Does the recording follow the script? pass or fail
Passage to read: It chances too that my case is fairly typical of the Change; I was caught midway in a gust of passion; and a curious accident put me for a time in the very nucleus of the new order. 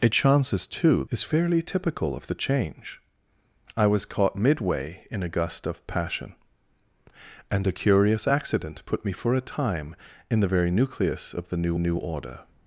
fail